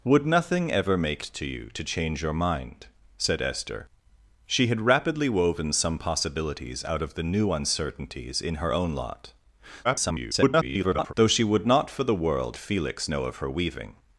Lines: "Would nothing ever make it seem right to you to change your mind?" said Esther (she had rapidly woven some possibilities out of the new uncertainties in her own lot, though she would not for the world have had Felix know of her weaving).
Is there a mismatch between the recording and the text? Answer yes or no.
yes